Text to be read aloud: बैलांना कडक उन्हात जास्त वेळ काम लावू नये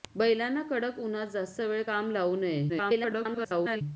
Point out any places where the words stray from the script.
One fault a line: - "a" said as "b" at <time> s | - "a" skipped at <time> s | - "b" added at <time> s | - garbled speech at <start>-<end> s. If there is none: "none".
- garbled speech at 2.7-3.8 s